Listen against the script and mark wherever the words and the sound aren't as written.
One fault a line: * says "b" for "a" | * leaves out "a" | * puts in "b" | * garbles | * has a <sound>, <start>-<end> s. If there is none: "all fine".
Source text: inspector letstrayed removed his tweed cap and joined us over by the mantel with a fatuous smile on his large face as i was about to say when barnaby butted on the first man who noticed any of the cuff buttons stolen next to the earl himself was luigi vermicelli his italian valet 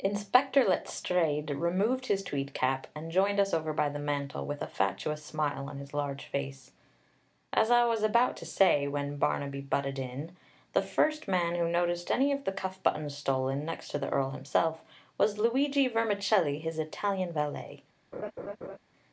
* says "in" for "on"
* has a laugh, 18.1-18.8 s